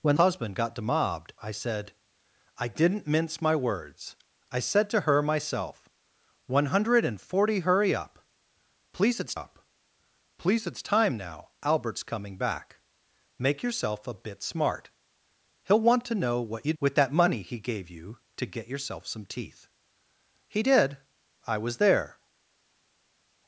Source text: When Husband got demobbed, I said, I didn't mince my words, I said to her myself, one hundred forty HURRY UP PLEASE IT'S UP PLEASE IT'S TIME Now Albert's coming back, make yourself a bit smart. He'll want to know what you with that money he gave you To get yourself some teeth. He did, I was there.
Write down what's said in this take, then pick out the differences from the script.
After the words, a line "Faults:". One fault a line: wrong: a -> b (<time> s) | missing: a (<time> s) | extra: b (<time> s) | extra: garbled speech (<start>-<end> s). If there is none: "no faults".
When Husband got demobbed, I said, I didn't mince my words, I said to her myself, one hundred forty HURRY UP PLEASE IT'S UP PLEASE IT'S TIME Now Albert's coming back, make yourself a bit smart. He'll want to know what you with that money he gave you To get yourself some teeth. He did, I was there.
Faults:
no faults